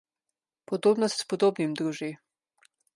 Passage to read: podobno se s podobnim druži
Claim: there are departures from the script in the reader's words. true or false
false